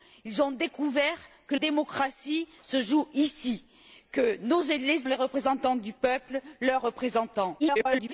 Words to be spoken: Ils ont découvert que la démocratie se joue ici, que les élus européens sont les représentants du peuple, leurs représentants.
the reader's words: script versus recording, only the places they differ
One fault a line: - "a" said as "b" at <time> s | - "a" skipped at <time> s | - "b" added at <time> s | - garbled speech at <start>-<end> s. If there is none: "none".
- "la" skipped at 1.6 s
- "élus européens sont" skipped at 5.1 s
- garbled speech at 7.6-8.1 s